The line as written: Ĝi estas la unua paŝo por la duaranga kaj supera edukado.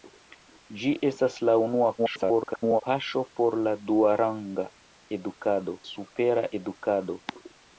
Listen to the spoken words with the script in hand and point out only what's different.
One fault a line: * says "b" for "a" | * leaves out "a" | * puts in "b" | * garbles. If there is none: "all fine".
* garbles
* says "edukado" for "kaj"